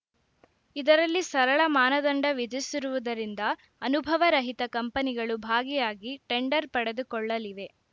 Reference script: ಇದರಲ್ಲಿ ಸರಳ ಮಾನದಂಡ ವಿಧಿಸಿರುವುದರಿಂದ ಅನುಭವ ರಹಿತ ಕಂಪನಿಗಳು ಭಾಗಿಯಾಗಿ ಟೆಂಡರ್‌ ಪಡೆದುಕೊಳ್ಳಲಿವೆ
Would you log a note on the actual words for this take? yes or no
no